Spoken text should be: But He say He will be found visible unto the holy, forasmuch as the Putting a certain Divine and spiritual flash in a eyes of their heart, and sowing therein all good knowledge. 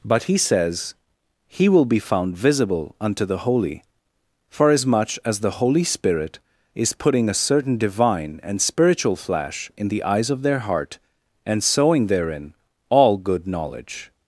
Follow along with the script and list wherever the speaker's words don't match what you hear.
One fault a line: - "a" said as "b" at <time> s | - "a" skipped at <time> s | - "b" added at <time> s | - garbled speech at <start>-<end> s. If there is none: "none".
- "say" said as "says" at 0.4 s
- "Holy Spirit is" added at 5.5 s
- "a" said as "the" at 9.9 s